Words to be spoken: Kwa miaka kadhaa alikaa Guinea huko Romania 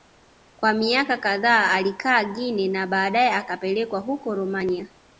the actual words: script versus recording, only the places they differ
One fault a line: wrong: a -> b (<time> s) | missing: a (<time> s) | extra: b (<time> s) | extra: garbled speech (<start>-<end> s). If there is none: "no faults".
extra: na baadae akapelekwa (2.7 s)